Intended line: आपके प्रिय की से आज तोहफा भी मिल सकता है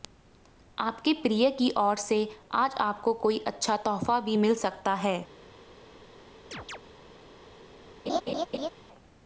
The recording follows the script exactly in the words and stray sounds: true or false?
false